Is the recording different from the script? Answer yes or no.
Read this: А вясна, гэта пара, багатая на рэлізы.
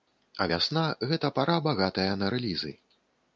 no